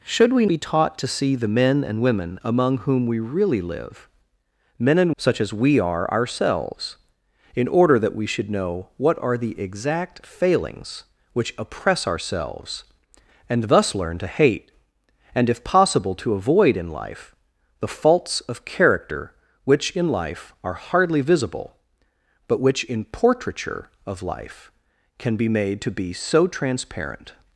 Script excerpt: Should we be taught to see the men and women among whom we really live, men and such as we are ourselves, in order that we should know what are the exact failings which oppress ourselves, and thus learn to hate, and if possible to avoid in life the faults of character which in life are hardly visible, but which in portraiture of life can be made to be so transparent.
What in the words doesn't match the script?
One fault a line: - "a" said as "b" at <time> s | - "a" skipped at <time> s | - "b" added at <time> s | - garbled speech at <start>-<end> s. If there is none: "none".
none